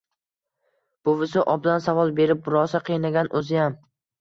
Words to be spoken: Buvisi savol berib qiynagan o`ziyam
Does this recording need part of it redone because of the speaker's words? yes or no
yes